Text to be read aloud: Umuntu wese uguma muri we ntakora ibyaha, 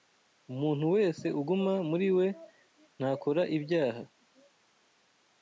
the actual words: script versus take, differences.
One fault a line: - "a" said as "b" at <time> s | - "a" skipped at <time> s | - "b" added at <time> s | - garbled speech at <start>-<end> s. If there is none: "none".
none